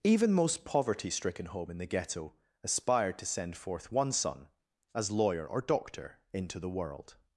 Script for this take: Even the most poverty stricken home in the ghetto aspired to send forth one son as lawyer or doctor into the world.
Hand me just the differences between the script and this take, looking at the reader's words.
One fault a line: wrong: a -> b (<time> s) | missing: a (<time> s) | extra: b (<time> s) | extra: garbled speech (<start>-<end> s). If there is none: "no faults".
missing: the (0.3 s)